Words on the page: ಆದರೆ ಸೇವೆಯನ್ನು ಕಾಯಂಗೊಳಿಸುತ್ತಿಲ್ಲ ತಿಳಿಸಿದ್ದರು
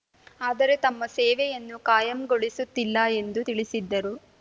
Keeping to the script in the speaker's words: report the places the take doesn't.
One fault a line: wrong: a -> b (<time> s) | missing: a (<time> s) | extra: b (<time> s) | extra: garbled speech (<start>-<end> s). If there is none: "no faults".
extra: ತಮ್ಮ (0.8 s)
extra: ಎಂದು (3.2 s)